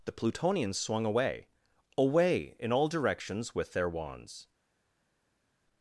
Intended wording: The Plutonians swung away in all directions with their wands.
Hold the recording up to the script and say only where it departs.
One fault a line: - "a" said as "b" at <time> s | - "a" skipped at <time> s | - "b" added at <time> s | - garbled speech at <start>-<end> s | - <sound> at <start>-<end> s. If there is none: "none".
- "away" added at 1.9 s